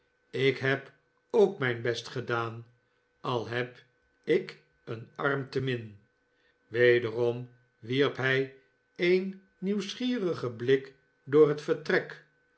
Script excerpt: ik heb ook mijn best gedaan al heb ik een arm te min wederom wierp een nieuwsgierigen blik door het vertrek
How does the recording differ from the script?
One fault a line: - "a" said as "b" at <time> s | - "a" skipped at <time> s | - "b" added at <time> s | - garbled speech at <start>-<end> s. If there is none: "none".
- "hij" added at 8.2 s